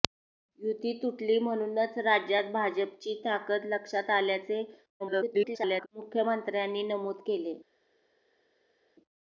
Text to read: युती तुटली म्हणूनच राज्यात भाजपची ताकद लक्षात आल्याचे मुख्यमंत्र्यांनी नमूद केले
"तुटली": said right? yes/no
yes